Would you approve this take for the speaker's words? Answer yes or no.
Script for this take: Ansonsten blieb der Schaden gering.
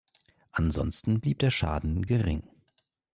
yes